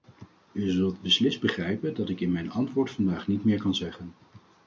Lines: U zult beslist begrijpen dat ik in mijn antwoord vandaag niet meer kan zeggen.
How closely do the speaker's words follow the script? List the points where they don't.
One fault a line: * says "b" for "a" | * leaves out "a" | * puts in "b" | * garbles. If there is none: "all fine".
all fine